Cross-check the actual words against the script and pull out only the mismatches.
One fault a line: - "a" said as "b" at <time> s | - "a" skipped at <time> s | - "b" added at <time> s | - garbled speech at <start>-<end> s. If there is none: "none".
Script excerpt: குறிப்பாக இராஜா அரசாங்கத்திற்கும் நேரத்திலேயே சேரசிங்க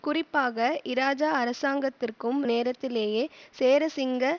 none